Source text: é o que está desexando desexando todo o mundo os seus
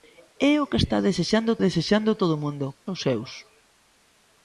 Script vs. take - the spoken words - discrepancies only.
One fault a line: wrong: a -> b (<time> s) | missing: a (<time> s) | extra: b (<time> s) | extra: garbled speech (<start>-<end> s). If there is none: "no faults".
no faults